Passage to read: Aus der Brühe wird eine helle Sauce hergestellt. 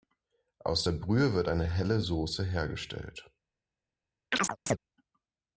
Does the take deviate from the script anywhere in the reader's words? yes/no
no